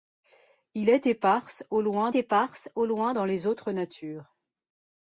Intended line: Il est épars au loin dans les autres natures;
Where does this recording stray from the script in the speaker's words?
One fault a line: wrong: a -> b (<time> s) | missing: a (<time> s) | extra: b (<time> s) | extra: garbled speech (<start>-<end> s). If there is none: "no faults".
extra: épars au loin (2.1 s)